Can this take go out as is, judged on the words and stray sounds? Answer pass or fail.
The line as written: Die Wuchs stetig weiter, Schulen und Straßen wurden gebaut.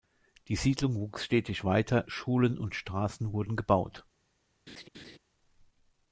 fail